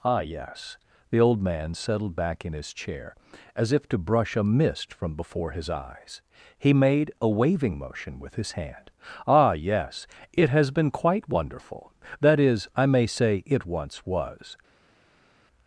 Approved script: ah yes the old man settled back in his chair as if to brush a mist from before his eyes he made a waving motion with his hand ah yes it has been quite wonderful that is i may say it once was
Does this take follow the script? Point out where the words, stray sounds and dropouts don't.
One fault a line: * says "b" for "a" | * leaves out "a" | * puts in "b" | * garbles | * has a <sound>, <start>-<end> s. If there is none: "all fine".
all fine